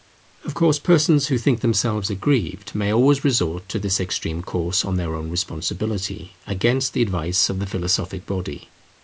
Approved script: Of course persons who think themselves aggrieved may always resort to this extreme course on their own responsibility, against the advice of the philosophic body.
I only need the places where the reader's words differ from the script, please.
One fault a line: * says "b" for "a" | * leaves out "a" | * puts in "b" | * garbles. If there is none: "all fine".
all fine